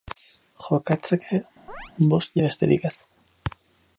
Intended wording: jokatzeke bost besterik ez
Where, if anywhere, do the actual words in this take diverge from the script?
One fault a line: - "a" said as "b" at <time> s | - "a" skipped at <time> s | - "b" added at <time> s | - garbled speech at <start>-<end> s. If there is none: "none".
none